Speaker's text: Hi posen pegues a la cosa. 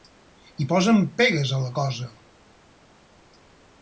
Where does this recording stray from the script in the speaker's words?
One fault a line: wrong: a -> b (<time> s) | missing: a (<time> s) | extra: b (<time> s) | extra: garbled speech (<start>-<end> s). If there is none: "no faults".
no faults